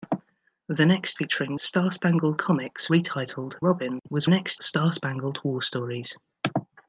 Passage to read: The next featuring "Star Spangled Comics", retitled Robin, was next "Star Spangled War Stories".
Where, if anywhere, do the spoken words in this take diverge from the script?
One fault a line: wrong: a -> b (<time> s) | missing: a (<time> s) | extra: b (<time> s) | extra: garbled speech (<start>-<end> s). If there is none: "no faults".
no faults